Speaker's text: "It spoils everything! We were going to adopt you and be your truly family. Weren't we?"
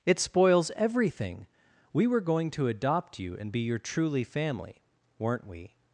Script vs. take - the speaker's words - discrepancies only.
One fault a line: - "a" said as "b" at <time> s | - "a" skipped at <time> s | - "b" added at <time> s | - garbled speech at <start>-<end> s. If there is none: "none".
none